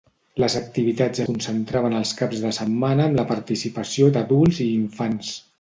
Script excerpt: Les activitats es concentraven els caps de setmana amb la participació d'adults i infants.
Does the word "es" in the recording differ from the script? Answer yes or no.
yes